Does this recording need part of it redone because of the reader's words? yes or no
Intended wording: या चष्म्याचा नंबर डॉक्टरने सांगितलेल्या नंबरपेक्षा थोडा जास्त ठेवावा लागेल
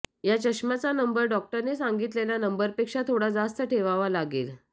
no